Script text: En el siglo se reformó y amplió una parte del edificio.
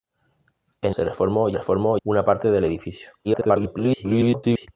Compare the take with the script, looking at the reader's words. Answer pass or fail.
fail